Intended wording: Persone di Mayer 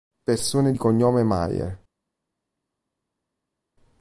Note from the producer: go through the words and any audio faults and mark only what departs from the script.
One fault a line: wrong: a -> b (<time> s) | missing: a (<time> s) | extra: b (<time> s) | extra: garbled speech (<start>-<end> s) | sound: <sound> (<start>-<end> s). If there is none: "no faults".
extra: cognome (0.8 s)